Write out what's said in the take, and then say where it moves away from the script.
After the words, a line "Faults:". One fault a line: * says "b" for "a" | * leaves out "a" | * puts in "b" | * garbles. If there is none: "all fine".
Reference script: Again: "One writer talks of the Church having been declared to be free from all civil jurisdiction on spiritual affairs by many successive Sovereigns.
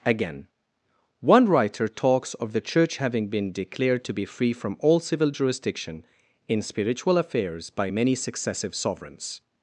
Again: "One writer talks of the Church having been declared to be free from all civil jurisdiction in spiritual affairs by many successive Sovereigns.
Faults:
* says "in" for "on"